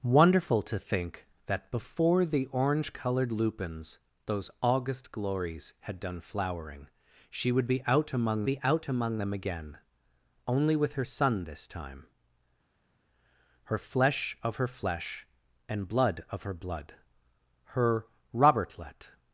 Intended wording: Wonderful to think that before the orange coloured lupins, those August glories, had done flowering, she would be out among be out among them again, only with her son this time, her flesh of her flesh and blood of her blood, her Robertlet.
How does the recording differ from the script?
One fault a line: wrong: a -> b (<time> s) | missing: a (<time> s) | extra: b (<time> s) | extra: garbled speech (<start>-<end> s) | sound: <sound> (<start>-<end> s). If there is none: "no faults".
no faults